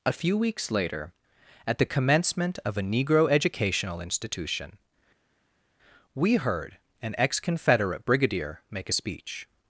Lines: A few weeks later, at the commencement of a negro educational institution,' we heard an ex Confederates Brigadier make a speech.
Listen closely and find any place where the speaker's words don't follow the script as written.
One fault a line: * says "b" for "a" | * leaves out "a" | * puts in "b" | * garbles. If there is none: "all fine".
* says "Confederate" for "Confederates"